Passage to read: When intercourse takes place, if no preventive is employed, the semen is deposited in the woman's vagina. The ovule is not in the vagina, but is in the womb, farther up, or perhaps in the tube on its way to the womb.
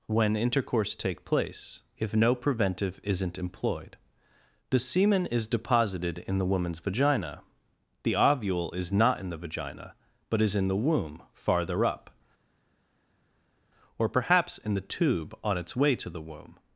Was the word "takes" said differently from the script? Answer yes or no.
yes